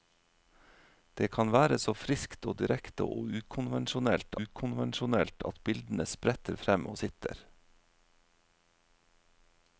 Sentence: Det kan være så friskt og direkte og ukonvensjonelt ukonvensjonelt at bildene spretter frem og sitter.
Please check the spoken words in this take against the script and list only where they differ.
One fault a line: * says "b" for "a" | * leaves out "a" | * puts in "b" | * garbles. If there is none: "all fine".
all fine